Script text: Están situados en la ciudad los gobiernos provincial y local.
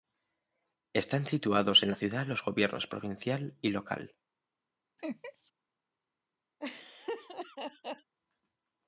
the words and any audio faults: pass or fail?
fail